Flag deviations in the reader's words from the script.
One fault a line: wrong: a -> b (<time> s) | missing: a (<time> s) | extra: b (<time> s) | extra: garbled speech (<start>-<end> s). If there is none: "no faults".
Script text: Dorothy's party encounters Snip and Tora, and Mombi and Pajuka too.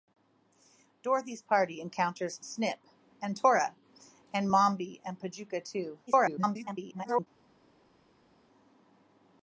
extra: garbled speech (6.1-7.3 s)